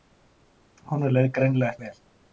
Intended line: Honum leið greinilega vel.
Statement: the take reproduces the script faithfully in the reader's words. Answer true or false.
true